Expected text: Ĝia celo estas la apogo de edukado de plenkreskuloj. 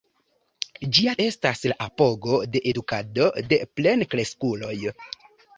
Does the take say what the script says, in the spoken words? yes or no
no